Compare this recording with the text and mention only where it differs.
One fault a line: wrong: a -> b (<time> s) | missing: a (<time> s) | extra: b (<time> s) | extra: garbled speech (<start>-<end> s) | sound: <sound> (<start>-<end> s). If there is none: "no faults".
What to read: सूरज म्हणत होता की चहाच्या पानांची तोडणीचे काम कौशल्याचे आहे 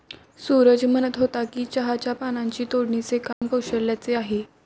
sound: dropout (3.3-3.4 s)